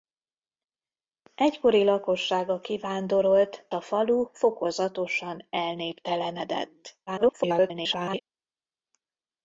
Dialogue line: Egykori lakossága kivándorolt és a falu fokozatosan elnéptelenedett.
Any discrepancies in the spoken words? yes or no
yes